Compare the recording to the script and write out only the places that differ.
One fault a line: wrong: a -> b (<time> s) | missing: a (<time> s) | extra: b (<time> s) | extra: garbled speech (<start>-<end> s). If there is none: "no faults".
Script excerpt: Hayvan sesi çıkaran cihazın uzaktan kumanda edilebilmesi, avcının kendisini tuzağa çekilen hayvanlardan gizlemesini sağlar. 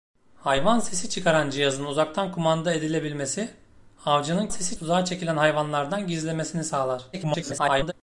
wrong: kendisini -> sesi (4.5 s)
extra: garbled speech (7.1-7.9 s)